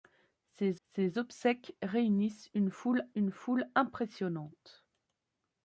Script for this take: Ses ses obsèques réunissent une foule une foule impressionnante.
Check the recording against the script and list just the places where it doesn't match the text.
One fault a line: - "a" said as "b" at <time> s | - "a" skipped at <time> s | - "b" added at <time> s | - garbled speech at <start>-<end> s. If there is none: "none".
none